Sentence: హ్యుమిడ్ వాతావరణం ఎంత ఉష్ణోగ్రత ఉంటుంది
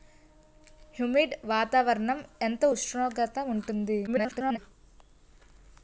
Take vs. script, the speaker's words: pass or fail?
fail